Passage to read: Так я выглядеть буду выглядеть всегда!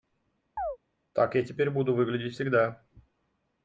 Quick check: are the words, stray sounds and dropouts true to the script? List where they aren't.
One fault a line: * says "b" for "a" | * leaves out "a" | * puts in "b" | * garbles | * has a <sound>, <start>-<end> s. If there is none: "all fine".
* has a chirp, 0.6-0.8 s
* says "теперь" for "выглядеть"